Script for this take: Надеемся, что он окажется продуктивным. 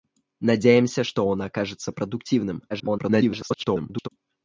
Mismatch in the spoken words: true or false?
true